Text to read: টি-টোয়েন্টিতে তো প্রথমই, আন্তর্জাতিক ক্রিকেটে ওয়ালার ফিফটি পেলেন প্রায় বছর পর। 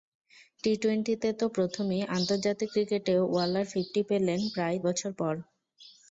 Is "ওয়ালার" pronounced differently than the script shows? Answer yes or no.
no